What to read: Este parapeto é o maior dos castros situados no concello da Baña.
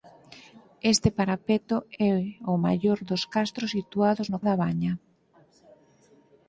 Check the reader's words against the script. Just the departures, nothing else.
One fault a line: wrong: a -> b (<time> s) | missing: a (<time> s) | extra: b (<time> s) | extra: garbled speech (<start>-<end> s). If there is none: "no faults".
missing: concello (4.4 s)